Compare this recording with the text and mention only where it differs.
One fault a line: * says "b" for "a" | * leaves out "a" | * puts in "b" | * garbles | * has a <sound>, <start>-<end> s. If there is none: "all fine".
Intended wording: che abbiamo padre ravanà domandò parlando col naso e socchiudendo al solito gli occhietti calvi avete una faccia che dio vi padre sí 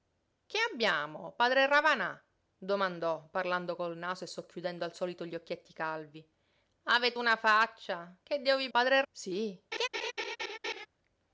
* has a laugh, 9.7-10.9 s